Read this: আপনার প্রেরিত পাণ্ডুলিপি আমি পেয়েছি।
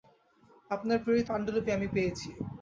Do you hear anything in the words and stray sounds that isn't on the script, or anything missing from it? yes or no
no